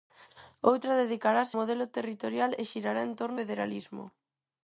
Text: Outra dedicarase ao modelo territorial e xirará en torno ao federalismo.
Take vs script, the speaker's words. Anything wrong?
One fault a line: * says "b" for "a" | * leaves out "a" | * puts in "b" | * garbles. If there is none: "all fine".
* leaves out "ao"
* leaves out "ao"